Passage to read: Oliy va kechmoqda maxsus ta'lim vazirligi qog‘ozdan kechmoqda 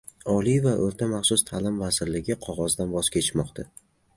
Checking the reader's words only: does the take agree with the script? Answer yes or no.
no